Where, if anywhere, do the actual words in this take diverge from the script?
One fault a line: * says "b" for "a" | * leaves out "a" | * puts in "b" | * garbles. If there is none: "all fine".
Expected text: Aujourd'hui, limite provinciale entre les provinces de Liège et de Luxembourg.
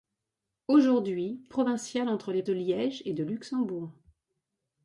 * leaves out "limite"
* leaves out "provinces"